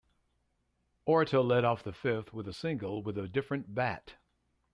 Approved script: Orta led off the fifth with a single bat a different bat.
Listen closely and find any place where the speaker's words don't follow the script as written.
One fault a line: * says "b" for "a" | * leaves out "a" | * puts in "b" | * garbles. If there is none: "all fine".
* says "with" for "bat"